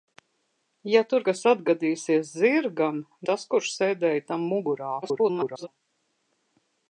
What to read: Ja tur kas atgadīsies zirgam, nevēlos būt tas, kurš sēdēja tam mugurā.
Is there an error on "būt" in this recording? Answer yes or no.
yes